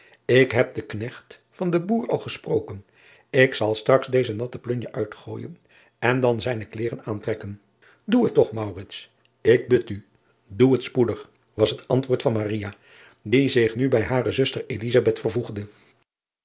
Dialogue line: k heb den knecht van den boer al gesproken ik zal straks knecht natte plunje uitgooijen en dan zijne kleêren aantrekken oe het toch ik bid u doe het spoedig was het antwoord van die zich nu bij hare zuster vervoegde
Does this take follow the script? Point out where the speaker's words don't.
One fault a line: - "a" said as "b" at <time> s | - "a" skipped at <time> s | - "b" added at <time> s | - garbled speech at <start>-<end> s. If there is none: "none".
- "knecht" said as "deze" at 4.1 s